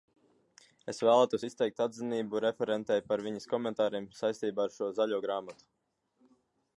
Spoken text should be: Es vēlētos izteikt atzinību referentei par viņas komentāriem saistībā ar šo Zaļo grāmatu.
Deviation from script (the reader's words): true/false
false